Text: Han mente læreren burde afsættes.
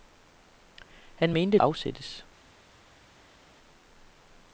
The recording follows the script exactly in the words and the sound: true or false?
false